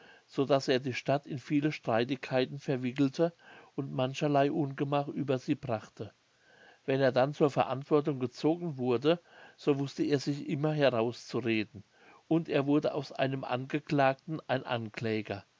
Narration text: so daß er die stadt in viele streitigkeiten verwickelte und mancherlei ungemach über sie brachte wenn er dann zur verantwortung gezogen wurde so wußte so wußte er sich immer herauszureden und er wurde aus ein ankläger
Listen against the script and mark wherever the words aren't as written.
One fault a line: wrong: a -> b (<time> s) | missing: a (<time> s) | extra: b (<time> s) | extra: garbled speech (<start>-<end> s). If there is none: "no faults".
missing: so wußte (10.0 s)
extra: einem angeklagten (13.1 s)